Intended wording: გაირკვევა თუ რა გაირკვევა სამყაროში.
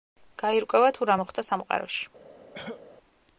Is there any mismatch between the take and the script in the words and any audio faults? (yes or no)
yes